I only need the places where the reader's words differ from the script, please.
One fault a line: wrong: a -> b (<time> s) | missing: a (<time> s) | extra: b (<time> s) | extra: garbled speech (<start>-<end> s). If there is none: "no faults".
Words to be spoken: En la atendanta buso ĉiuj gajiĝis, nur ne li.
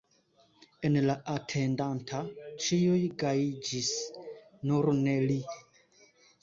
missing: buso (2.2 s)